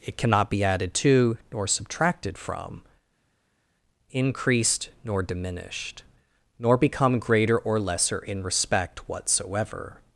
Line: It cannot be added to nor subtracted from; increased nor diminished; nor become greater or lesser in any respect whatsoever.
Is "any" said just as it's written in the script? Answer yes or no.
no